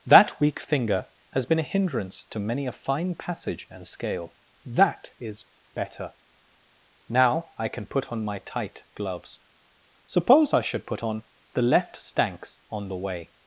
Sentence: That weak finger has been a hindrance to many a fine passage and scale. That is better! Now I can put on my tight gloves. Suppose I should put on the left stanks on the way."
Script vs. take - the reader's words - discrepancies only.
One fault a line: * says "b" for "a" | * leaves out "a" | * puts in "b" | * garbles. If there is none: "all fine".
all fine